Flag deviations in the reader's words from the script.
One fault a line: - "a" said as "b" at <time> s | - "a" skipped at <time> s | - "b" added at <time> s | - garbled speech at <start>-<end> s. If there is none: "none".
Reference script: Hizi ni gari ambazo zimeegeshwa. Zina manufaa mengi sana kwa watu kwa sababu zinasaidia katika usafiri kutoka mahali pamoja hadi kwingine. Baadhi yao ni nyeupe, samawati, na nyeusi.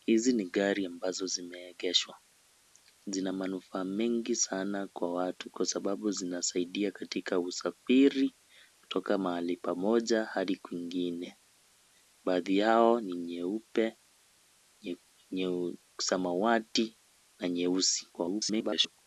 - garbled speech at 18.1-19.0 s